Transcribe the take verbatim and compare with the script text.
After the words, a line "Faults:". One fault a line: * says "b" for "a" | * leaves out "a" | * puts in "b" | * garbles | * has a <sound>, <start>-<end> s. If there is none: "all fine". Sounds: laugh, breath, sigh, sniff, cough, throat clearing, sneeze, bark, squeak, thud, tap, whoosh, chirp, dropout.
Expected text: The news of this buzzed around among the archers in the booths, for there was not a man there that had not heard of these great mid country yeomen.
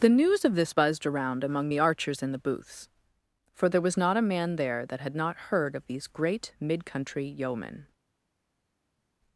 The news of this buzzed around among the archers in the booths, for there was not a man there that had not heard of these great mid country yeomen.
Faults:
all fine